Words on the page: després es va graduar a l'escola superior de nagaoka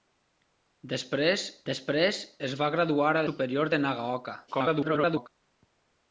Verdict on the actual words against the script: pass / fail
fail